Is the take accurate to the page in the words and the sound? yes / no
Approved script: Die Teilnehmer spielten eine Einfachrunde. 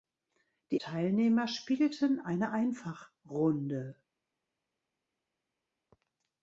yes